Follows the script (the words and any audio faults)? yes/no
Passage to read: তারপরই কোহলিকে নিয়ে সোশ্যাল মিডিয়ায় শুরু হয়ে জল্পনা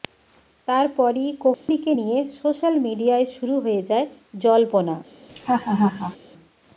no